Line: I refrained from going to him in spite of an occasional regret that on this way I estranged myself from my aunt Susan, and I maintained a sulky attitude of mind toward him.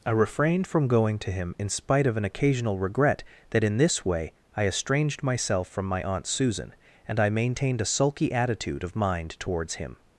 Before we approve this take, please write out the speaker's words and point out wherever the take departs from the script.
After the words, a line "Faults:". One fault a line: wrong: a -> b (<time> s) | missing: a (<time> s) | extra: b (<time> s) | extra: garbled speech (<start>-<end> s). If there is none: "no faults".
I refrained from going to him in spite of an occasional regret that in this way I estranged myself from my aunt Susan, and I maintained a sulky attitude of mind towards him.
Faults:
wrong: on -> in (3.6 s)
wrong: toward -> towards (9.4 s)